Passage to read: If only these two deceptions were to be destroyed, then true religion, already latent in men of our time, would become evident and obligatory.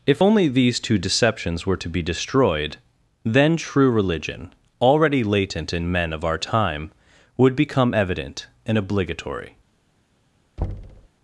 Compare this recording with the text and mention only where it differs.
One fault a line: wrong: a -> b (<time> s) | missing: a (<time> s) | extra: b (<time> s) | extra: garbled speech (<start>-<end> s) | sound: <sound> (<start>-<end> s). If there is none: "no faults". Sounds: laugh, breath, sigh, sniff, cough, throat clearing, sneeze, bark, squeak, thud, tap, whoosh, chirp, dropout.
sound: thud (10.6-11.1 s)